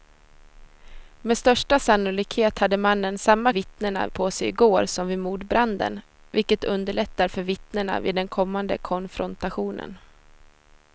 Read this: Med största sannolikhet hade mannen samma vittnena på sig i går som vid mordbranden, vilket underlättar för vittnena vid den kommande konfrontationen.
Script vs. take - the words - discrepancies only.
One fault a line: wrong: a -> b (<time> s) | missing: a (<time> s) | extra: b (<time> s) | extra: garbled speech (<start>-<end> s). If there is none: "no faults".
no faults